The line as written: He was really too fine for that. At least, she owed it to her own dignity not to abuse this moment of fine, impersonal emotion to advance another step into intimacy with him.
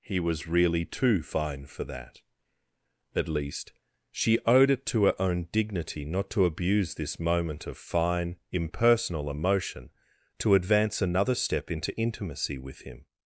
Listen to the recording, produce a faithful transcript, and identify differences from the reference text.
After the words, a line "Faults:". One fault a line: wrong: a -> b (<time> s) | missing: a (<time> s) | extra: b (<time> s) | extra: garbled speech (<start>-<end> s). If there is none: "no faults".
He was really too fine for that. At least, she owed it to her own dignity not to abuse this moment of fine, impersonal emotion to advance another step into intimacy with him.
Faults:
no faults